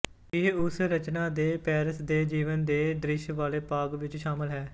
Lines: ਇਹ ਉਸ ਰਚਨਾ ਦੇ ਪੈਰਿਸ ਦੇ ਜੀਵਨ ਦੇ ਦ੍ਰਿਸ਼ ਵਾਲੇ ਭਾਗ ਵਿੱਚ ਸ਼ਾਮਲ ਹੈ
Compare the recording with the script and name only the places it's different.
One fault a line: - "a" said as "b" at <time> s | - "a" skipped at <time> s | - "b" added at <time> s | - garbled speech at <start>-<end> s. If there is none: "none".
none